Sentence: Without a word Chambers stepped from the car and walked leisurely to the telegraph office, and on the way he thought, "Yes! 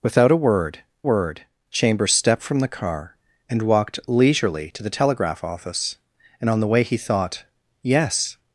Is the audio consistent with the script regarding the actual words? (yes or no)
no